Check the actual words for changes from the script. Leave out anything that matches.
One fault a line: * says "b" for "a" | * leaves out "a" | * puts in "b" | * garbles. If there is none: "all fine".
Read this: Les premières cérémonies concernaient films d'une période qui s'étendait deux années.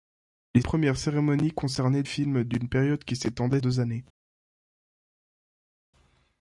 all fine